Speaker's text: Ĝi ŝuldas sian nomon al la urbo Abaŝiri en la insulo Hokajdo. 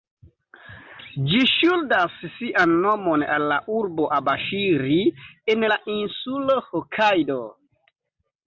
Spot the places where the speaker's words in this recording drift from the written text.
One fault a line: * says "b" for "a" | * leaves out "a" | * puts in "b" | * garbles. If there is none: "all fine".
all fine